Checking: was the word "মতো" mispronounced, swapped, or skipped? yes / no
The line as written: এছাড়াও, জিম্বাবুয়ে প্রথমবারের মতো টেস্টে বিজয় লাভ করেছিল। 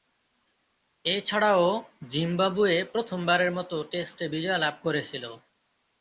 no